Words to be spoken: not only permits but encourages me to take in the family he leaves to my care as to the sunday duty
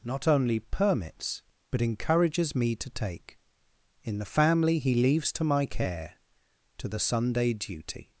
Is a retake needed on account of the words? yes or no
yes